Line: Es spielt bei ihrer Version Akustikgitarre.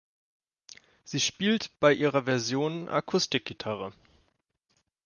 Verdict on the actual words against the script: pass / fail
fail